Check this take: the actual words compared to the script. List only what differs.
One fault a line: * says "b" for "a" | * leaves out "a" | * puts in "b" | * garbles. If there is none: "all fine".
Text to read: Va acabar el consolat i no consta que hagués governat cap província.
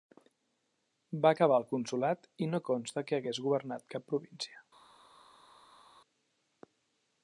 all fine